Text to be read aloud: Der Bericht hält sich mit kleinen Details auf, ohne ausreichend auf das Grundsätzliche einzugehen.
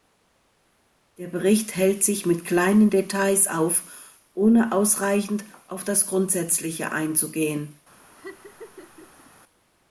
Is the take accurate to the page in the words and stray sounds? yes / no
no